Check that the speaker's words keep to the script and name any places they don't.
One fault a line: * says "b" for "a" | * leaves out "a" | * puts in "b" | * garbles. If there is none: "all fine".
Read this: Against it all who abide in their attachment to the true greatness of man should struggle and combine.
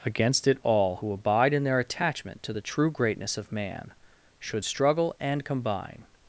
all fine